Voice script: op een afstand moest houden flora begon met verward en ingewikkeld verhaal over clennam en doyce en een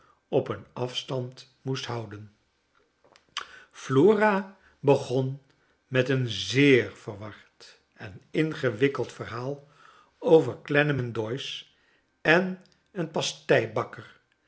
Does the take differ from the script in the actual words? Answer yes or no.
yes